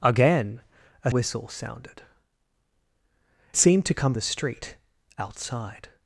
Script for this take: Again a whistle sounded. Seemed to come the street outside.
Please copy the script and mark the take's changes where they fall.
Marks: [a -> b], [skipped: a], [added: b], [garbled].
Again a whistle sounded. Seemed to come the street outside.